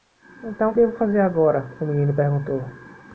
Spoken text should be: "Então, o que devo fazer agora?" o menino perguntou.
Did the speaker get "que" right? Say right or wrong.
wrong